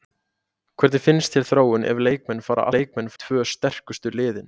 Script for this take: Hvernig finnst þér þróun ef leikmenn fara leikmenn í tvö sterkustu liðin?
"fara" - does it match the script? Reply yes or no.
yes